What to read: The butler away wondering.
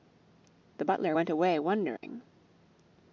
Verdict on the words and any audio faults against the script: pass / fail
fail